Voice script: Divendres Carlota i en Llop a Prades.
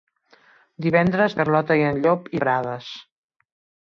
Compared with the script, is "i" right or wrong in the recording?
right